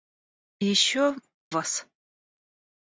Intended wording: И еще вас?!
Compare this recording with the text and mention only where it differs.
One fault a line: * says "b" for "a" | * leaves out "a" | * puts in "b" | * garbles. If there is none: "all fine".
all fine